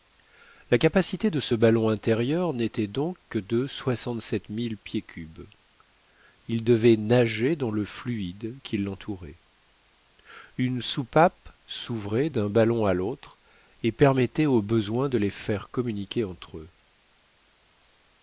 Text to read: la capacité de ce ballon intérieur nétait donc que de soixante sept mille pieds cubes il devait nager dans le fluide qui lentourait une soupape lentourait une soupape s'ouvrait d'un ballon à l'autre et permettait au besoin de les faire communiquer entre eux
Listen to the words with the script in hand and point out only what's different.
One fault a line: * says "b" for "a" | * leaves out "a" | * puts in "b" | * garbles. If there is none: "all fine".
* leaves out "lentourait une soupape"